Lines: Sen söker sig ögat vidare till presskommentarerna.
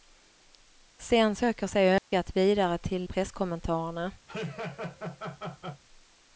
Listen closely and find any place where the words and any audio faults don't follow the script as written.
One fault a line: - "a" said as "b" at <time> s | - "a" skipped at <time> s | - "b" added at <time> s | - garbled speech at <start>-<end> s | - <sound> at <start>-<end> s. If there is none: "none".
- dropout at 2.0-2.1 s
- laugh at 4.3-5.8 s